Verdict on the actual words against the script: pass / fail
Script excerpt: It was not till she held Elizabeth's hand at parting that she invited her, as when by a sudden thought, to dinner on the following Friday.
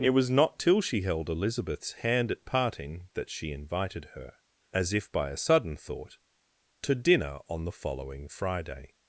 fail